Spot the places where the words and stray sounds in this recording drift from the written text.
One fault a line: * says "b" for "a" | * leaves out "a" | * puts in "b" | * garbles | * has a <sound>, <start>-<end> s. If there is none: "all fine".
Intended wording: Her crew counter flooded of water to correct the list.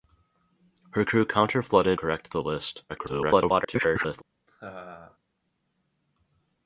* leaves out "of water to"
* garbles
* has a laugh, 4.5-5.2 s